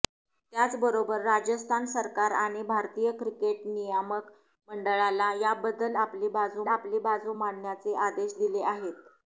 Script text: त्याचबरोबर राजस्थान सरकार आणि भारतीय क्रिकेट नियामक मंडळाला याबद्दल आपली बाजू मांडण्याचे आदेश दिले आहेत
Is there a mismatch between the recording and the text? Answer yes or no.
yes